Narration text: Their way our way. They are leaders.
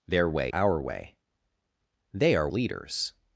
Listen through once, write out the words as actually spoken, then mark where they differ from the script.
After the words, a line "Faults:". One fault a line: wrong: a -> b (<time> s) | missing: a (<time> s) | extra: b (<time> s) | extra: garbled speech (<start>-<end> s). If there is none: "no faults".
Their way our way. They are leaders.
Faults:
no faults